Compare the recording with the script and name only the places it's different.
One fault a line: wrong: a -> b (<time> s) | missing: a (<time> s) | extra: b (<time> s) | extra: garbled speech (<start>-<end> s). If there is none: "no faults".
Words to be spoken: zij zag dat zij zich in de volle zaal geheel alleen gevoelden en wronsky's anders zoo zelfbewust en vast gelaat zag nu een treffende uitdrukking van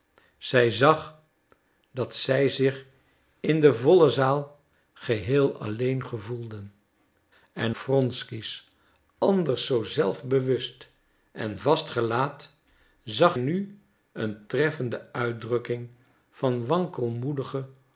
no faults